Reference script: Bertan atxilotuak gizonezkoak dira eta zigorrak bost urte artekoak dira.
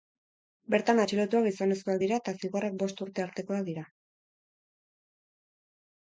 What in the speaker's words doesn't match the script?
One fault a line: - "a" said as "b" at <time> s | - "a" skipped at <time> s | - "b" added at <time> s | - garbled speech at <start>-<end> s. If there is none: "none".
none